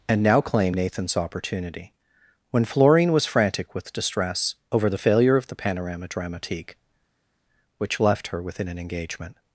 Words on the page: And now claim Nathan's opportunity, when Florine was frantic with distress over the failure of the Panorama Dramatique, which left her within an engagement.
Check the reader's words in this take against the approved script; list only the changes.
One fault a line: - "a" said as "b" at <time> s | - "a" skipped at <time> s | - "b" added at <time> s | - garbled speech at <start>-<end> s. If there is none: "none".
none